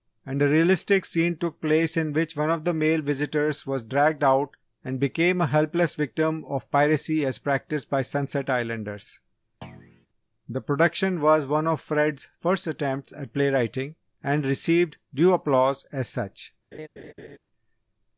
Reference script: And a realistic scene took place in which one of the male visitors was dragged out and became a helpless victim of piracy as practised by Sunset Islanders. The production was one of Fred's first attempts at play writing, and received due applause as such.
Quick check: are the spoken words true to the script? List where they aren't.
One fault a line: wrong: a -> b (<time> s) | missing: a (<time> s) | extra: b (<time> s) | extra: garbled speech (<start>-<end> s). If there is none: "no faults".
no faults